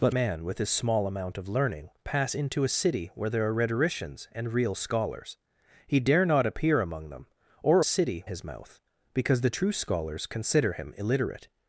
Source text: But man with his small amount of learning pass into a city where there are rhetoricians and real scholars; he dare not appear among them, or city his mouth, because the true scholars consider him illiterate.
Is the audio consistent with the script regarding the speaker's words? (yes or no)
yes